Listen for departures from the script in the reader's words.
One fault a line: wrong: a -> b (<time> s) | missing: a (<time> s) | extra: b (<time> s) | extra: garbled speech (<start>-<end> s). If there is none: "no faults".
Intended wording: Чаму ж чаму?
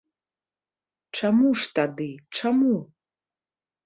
extra: тады (1.8 s)